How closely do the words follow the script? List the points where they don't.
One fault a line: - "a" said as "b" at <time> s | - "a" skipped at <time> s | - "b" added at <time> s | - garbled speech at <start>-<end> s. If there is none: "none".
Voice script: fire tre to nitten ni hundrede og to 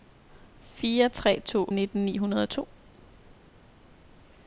none